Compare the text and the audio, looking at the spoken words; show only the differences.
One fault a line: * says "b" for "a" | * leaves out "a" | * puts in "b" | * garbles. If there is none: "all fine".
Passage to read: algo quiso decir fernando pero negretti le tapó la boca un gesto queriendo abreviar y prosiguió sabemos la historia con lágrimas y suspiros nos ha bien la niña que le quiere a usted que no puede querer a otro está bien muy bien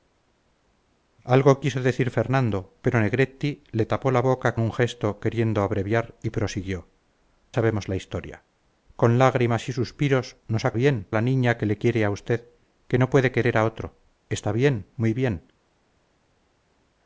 all fine